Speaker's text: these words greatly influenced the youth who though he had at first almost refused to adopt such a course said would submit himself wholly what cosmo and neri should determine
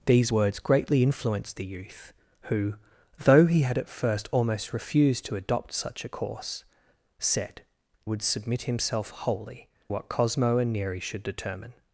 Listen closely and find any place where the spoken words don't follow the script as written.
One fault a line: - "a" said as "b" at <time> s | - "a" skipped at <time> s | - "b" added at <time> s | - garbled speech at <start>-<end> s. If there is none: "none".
none